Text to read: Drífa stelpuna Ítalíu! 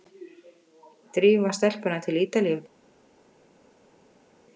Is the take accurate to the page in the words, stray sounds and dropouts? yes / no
no